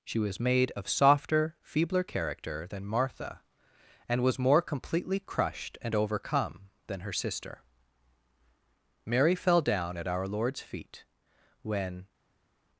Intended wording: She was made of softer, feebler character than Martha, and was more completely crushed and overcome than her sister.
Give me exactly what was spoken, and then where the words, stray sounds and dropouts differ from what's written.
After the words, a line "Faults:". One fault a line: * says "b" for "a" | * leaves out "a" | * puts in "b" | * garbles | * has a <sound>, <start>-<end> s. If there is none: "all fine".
She was made of softer, feebler character than Martha, and was more completely crushed and overcome than her sister. Mary fell down at our Lord's feet when
Faults:
* puts in "Mary fell down at our Lord's feet when"